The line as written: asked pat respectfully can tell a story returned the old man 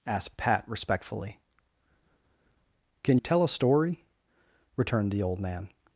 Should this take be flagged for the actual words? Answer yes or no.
no